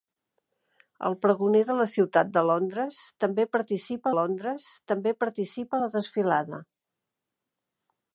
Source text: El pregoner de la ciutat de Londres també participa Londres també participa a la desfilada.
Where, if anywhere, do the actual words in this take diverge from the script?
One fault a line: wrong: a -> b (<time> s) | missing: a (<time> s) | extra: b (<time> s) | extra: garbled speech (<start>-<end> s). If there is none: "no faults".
no faults